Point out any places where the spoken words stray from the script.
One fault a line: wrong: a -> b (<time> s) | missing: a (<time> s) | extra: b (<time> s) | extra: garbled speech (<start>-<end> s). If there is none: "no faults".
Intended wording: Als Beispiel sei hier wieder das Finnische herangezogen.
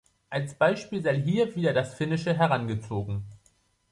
no faults